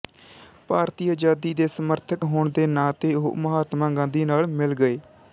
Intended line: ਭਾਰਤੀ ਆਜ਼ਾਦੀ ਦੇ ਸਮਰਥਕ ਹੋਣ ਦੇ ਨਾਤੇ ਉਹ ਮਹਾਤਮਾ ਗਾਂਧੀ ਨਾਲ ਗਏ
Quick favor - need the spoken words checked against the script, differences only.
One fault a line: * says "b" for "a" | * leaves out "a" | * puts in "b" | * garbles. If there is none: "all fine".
* puts in "ਮਿਲ"